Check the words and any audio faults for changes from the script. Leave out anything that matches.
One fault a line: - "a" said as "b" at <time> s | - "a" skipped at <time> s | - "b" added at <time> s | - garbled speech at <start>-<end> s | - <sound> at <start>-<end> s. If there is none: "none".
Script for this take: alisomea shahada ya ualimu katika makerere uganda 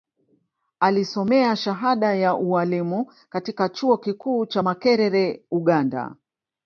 - "chuo kikuu cha" added at 3.7 s